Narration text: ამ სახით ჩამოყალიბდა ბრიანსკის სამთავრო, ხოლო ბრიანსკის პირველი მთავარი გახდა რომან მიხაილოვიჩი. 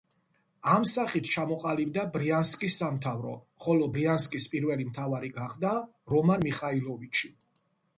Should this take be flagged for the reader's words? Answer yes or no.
no